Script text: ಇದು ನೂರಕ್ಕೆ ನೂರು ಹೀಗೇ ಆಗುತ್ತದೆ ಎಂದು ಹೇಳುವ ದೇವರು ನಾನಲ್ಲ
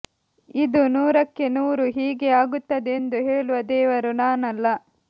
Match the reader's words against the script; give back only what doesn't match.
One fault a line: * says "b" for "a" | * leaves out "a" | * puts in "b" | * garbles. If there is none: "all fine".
all fine